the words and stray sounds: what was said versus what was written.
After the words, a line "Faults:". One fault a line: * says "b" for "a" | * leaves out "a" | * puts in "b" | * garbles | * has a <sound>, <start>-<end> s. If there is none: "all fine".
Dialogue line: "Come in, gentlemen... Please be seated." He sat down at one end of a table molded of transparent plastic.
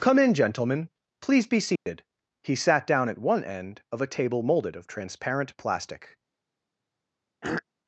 "Come in, gentlemen... Please be seated." He sat down at one end of a table molded of transparent plastic.
Faults:
* has a dropout, 1.8-1.9 s
* has a throat clearing, 7.4-7.6 s